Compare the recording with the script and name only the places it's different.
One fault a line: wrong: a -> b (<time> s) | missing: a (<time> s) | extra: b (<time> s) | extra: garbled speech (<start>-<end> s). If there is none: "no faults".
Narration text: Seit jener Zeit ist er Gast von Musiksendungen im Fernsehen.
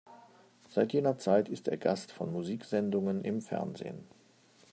no faults